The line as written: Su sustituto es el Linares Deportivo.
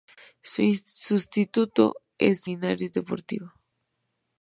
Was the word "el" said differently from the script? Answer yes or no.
yes